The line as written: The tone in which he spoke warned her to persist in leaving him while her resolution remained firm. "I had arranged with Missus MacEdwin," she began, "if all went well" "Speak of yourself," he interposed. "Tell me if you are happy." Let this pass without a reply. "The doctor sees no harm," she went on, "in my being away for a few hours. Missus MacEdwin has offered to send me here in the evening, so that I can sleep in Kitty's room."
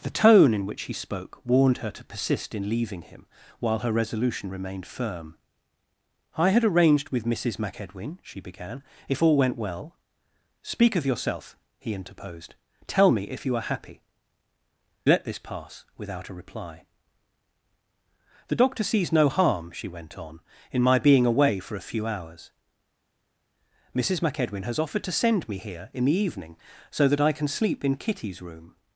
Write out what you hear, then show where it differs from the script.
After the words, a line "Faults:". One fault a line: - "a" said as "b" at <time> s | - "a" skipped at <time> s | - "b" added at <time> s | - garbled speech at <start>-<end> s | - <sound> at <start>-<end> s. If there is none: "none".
The tone in which he spoke warned her to persist in leaving him while her resolution remained firm. "I had arranged with Missus MacEdwin," she began, "if all went well" "Speak of yourself," he interposed. "Tell me if you are happy." Let this pass without a reply. "The doctor sees no harm," she went on, "in my being away for a few hours. Missus MacEdwin has offered to send me here in the evening, so that I can sleep in Kitty's room."
Faults:
none